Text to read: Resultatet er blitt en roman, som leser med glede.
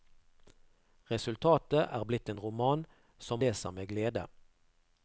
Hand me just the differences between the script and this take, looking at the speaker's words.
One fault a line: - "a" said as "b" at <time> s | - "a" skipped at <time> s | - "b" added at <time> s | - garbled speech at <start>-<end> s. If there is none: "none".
none